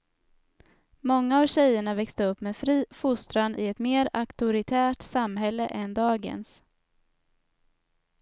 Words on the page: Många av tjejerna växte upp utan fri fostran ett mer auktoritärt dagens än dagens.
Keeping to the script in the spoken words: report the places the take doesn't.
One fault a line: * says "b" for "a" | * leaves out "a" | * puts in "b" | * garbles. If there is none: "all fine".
* says "med" for "utan"
* puts in "i"
* says "samhälle" for "dagens"